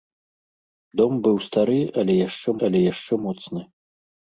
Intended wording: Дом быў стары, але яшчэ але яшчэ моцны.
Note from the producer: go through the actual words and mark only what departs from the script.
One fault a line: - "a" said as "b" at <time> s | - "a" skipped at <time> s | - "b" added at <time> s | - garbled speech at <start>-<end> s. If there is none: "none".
none